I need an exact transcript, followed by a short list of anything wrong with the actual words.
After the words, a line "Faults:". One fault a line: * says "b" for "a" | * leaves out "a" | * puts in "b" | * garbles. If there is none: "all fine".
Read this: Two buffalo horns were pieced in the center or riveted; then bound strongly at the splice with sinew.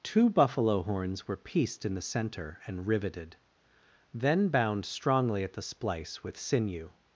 Two buffalo horns were pieced in the center and riveted; then bound strongly at the splice with sinew.
Faults:
* says "and" for "or"